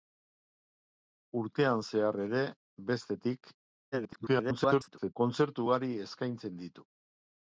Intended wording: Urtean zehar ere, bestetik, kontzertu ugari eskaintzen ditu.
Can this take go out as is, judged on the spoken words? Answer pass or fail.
fail